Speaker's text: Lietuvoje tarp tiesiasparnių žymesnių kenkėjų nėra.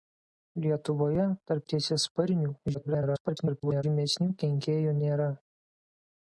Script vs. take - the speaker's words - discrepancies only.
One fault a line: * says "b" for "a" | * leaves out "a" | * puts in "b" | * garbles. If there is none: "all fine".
* garbles